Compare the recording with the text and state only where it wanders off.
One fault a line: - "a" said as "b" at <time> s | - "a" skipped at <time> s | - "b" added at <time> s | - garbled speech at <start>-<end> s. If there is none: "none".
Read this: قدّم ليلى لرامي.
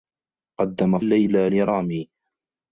none